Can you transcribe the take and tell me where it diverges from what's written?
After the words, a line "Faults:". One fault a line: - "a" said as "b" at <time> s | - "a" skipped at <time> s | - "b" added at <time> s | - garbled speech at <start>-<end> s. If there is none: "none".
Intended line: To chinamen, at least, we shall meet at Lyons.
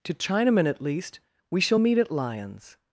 To chinamen, at least, we shall meet at Lyons.
Faults:
none